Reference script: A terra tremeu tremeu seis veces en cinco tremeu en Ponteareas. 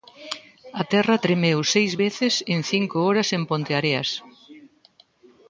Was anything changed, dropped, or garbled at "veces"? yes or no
no